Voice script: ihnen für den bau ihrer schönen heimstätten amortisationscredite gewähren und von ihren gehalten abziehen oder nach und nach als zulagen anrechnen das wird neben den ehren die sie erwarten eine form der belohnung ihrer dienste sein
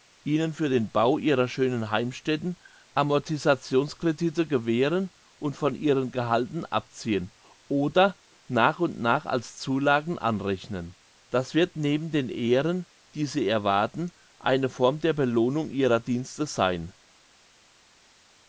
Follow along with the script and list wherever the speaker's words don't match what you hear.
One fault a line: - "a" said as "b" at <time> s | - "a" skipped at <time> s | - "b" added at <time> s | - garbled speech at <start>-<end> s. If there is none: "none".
none